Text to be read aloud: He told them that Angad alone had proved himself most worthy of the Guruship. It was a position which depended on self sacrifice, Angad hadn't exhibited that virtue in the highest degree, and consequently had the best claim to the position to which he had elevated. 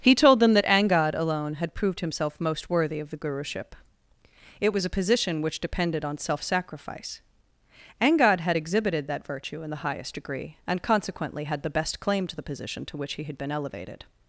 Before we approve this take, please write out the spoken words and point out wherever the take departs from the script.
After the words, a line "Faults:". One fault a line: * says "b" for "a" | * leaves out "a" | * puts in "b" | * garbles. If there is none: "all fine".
He told them that Angad alone had proved himself most worthy of the Guruship. It was a position which depended on self sacrifice, Angad had exhibited that virtue in the highest degree, and consequently had the best claim to the position to which he had been elevated.
Faults:
* says "had" for "hadn't"
* puts in "been"